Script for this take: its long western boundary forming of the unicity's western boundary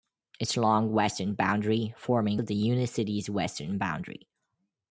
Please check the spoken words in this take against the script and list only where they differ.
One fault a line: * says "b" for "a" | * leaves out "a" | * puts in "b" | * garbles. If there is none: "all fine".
all fine